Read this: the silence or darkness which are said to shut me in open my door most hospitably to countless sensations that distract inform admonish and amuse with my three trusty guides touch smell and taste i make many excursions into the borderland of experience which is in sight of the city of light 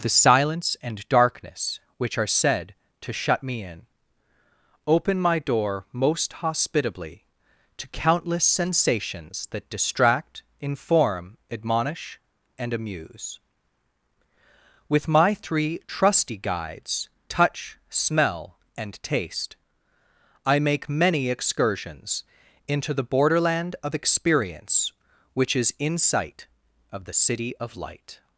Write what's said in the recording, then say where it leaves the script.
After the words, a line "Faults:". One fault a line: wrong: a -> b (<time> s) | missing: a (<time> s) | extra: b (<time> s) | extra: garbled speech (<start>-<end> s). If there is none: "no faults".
the silence and darkness which are said to shut me in open my door most hospitably to countless sensations that distract inform admonish and amuse with my three trusty guides touch smell and taste i make many excursions into the borderland of experience which is in sight of the city of light
Faults:
wrong: or -> and (0.8 s)